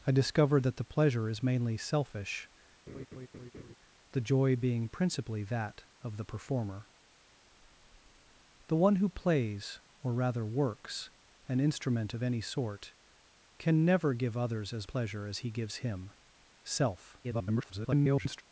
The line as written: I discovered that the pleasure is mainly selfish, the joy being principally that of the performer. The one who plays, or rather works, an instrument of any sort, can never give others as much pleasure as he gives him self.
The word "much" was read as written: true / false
false